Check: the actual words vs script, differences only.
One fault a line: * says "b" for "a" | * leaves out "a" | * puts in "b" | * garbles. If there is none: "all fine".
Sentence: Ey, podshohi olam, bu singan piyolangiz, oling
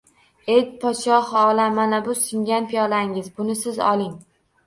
* puts in "mana"
* puts in "buni siz"